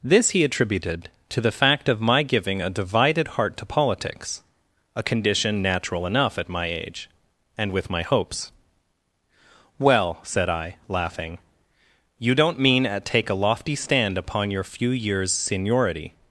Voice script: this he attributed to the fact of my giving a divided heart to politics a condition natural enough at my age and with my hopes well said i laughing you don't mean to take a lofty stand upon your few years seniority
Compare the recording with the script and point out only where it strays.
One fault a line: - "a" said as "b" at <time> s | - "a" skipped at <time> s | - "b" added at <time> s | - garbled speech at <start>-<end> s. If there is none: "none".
- "to" said as "at" at 12.8 s